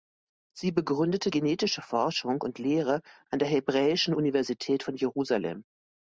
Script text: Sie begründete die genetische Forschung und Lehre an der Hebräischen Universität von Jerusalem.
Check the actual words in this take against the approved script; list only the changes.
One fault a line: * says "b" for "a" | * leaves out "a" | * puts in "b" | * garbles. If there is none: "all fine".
* leaves out "die"